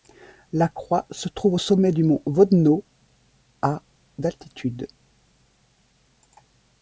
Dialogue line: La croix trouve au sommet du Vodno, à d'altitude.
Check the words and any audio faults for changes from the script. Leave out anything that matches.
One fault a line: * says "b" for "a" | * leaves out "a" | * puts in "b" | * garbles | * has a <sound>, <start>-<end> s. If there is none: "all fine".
* puts in "se"
* puts in "mont"